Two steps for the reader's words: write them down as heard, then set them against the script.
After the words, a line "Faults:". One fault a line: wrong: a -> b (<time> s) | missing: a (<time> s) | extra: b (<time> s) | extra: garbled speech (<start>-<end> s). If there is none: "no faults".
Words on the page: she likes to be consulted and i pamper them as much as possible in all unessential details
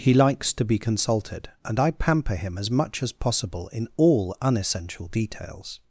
he likes to be consulted and i pamper him as much as possible in all unessential details
Faults:
wrong: she -> he (0.0 s)
wrong: them -> him (2.3 s)